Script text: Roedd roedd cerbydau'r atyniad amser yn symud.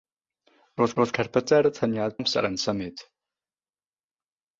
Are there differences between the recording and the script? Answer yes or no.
no